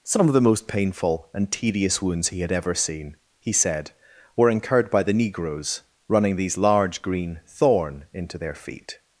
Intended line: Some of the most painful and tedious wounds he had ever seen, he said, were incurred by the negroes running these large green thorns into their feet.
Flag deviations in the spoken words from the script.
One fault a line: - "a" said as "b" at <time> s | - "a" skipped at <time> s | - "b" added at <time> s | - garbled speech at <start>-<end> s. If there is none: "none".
- "thorns" said as "thorn" at 7.5 s